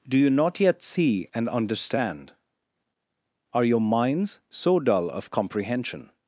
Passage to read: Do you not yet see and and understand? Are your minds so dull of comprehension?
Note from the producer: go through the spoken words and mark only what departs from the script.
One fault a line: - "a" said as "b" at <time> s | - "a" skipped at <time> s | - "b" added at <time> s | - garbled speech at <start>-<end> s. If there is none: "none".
- "and" skipped at 1.5 s